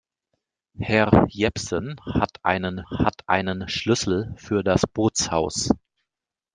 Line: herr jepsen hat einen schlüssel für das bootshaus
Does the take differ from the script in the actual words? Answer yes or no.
yes